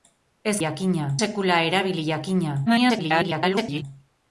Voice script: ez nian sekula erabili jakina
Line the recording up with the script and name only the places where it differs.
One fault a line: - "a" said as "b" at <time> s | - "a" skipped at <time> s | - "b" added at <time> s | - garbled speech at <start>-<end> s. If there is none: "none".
- "nian" said as "jakina" at 0.6 s
- garbled speech at 2.7-3.8 s